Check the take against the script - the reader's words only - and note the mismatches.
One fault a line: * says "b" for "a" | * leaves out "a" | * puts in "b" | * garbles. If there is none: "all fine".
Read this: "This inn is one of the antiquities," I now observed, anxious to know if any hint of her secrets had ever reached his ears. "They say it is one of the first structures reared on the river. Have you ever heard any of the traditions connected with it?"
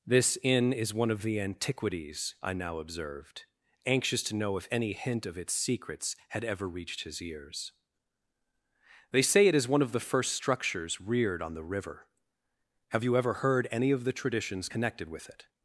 * says "its" for "her"